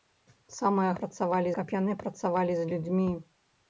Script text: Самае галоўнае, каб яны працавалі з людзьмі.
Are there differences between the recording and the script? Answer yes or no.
yes